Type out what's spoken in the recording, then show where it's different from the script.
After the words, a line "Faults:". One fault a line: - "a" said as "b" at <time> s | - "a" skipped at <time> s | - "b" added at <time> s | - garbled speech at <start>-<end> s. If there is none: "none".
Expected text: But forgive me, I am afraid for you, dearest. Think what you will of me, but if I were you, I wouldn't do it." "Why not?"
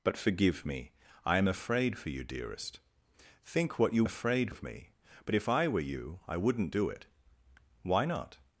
But forgive me, I am afraid for you, dearest. Think what you afraid of me, but if I were you, I wouldn't do it." "Why not?"
Faults:
- "will" said as "afraid" at 4.0 s